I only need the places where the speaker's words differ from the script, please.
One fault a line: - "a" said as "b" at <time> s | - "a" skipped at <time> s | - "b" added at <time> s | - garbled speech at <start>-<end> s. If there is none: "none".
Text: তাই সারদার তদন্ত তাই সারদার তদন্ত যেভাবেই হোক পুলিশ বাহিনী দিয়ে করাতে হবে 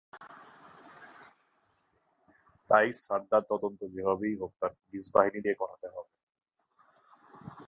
- "তাই সারদার তদন্ত" skipped at 3.8 s
- "তার" added at 4.6 s